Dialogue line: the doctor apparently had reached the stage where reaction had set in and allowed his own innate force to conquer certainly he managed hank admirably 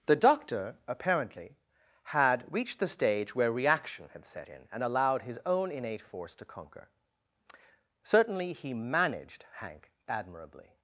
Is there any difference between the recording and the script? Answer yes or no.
no